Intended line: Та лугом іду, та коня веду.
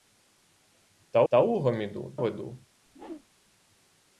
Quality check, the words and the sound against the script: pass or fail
fail